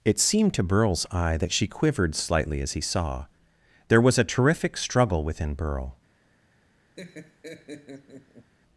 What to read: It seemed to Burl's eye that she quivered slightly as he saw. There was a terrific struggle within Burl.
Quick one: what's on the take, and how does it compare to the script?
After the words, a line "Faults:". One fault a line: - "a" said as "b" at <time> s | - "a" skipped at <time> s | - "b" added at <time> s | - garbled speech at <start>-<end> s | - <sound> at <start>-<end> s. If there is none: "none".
It seemed to Burl's eye that she quivered slightly as he saw. There was a terrific struggle within Burl.
Faults:
- laugh at 7.0-8.5 s